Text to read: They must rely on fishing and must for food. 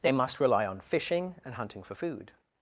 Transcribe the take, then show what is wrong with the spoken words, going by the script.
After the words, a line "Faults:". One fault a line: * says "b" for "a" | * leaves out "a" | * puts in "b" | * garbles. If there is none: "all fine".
They must rely on fishing and hunting for food.
Faults:
* says "hunting" for "must"